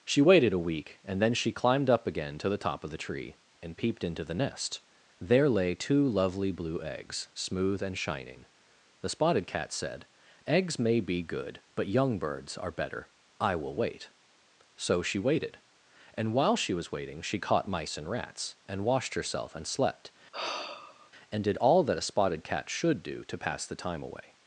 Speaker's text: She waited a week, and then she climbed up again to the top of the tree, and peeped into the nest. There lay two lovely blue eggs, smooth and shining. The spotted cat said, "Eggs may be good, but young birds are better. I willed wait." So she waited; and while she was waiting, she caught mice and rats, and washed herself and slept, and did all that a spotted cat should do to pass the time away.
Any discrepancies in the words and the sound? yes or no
yes